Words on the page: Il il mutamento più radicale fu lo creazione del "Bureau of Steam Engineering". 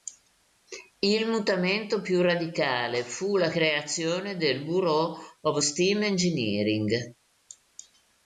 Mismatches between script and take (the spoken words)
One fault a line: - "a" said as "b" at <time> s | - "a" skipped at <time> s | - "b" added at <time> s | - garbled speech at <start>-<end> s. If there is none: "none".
- "il" skipped at 1.3 s
- "lo" said as "la" at 3.4 s